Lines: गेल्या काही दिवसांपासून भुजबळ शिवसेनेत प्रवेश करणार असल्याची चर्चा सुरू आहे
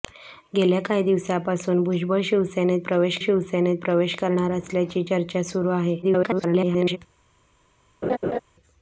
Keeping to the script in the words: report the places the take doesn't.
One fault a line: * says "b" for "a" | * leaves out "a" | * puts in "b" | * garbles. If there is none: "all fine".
* puts in "शिवसेनेत प्रवेश"
* garbles